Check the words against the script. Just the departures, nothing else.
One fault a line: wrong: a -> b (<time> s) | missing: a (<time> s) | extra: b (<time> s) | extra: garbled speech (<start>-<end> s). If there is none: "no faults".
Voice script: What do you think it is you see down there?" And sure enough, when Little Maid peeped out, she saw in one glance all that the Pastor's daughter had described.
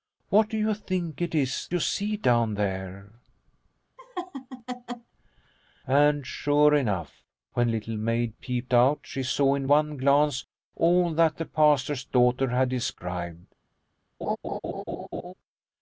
no faults